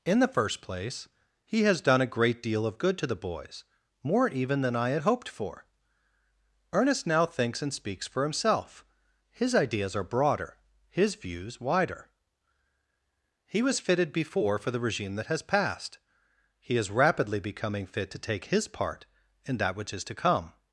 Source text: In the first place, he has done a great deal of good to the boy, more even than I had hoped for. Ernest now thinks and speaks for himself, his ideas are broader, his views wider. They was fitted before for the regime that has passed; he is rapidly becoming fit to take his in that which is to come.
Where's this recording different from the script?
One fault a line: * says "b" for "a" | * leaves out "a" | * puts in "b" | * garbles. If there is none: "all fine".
* says "boys" for "boy"
* says "He" for "They"
* puts in "part"